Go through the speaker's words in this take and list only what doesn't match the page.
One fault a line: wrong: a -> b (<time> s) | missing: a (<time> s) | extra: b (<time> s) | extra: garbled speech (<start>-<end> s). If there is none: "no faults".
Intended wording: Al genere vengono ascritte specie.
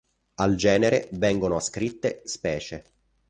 no faults